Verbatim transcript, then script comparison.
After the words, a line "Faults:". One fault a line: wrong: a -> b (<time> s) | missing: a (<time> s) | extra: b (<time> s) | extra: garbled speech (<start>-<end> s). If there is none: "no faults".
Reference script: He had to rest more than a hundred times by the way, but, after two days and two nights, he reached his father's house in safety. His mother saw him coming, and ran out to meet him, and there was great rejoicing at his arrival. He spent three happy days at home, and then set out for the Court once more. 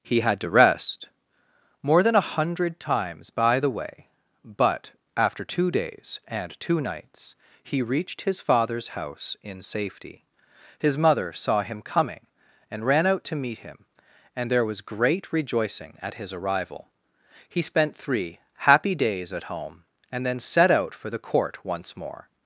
He had to rest more than a hundred times by the way, but, after two days and two nights, he reached his father's house in safety. His mother saw him coming, and ran out to meet him, and there was great rejoicing at his arrival. He spent three happy days at home, and then set out for the Court once more.
Faults:
no faults